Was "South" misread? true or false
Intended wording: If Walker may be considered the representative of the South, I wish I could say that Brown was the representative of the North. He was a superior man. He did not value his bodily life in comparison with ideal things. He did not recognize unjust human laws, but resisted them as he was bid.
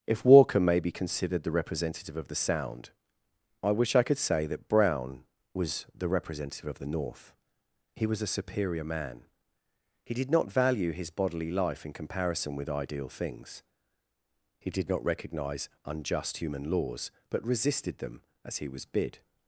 true